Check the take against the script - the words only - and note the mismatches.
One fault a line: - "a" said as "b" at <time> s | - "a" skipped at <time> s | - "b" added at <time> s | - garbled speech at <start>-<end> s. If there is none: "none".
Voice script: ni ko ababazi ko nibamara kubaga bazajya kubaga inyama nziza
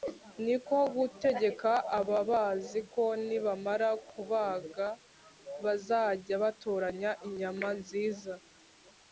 - "gutegeka" added at 1.0 s
- "kubaga" said as "batoranya" at 6.4 s